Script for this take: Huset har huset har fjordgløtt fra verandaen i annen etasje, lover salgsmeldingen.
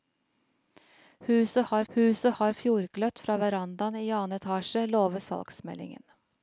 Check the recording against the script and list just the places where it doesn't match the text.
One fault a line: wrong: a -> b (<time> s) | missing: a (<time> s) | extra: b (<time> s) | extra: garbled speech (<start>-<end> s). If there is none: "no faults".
no faults